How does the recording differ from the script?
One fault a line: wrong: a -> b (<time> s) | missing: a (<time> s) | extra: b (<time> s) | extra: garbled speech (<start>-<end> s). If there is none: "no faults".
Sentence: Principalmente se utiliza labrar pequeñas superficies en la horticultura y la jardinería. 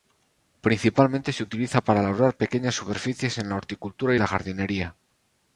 extra: para (1.8 s)